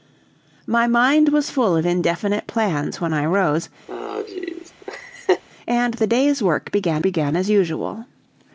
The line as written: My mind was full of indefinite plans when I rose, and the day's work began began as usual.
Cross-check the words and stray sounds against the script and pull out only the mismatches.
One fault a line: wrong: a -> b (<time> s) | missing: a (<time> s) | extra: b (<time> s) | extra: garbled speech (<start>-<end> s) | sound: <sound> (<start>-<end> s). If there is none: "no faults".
sound: laugh (3.9-5.4 s)